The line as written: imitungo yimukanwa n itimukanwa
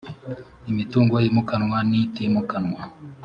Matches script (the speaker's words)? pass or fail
pass